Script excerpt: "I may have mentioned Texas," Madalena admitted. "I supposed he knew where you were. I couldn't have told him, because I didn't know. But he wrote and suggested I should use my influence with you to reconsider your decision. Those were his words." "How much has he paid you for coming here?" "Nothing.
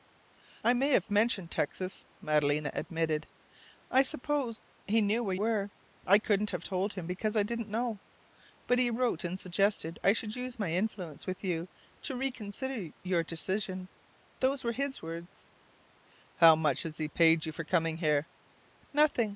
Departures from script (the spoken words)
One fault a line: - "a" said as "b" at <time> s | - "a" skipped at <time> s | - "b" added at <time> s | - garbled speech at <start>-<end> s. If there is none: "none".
- "you" skipped at 5.3 s